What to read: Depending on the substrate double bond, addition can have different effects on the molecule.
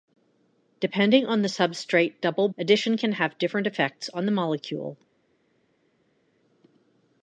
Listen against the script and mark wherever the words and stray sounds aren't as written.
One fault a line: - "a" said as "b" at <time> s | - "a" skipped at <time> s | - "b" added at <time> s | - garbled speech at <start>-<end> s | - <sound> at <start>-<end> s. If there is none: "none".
- "bond" skipped at 2.5 s